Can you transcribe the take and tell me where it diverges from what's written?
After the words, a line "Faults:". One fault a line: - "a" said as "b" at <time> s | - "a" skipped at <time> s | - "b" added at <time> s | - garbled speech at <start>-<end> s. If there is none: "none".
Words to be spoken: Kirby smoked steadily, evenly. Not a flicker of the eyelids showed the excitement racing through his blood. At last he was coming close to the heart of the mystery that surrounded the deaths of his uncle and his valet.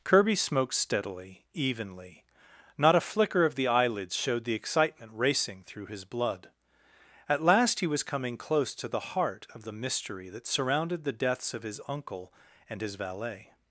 Kirby smoked steadily, evenly. Not a flicker of the eyelids showed the excitement racing through his blood. At last he was coming close to the heart of the mystery that surrounded the deaths of his uncle and his valet.
Faults:
none